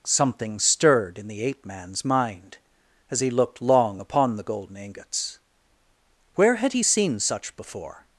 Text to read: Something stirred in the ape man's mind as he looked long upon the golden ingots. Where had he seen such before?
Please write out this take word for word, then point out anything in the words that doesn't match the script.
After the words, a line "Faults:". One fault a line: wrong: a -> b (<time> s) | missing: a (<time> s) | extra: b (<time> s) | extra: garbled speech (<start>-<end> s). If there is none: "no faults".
Something stirred in the ape man's mind as he looked long upon the golden ingots. Where had he seen such before?
Faults:
no faults